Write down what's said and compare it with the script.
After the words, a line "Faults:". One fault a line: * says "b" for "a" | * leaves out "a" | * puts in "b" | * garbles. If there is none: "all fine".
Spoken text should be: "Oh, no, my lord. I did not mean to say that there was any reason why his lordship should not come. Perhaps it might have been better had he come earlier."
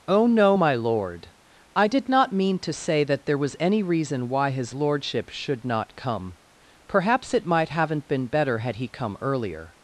"Oh, no, my lord. I did not mean to say that there was any reason why his lordship should not come. Perhaps it might haven't been better had he come earlier."
Faults:
* says "haven't" for "have"